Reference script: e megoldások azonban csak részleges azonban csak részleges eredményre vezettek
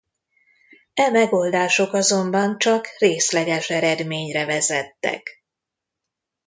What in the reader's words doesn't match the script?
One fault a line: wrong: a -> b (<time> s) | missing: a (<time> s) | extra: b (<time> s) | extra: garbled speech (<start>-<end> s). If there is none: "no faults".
missing: azonban csak részleges (3.7 s)